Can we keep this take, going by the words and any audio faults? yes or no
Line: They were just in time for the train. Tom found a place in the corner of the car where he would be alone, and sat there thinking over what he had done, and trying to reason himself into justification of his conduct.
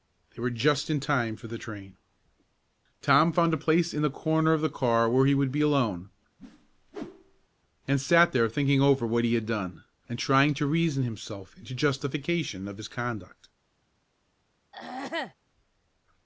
no